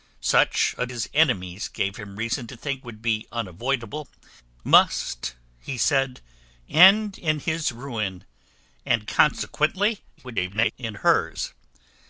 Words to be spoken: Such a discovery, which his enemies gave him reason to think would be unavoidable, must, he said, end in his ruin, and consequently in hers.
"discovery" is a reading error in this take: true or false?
true